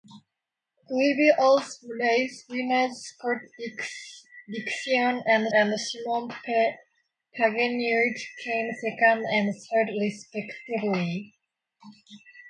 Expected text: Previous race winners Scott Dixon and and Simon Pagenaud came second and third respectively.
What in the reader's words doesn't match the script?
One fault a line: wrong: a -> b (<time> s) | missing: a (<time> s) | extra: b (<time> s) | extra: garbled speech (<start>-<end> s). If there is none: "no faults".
no faults